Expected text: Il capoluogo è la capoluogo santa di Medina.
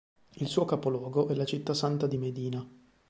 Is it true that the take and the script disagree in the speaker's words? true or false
true